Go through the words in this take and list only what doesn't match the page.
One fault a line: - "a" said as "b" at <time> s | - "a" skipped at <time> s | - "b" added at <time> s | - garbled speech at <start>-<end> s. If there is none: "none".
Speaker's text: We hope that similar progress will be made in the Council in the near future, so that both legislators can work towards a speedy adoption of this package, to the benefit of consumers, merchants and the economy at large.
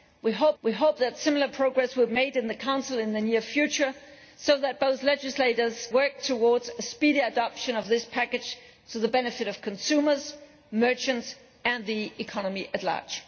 - "we hope" added at 0.6 s
- "be" skipped at 2.1 s
- "can" skipped at 5.9 s